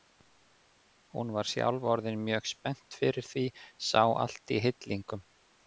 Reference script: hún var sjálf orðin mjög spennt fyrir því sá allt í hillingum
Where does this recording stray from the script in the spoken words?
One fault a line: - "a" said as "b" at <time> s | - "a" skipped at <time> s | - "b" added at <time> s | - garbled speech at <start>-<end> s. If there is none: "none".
none